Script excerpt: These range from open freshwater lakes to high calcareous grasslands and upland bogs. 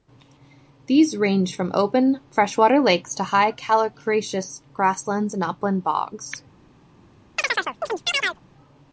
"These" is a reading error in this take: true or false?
false